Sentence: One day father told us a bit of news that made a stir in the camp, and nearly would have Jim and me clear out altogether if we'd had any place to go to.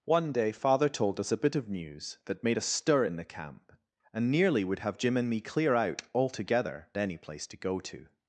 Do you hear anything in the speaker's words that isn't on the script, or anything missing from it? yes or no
yes